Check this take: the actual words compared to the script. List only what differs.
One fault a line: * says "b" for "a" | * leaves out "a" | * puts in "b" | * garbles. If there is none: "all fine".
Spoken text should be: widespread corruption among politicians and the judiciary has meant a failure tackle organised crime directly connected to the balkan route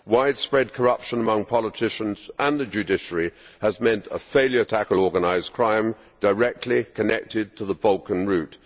all fine